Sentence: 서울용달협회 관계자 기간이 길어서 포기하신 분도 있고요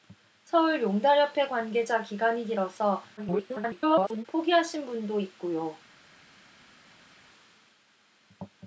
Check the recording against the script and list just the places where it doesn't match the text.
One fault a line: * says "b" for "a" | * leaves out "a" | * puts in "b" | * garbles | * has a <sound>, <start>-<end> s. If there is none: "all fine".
* garbles